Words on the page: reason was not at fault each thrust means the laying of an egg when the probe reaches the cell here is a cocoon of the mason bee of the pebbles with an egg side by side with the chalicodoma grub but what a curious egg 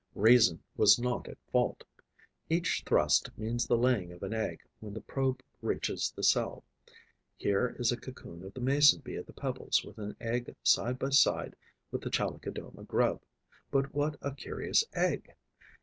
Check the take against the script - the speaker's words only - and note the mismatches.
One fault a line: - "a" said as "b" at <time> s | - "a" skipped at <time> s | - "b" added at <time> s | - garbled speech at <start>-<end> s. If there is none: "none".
none